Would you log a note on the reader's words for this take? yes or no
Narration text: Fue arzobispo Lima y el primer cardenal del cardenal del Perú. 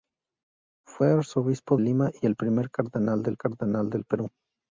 no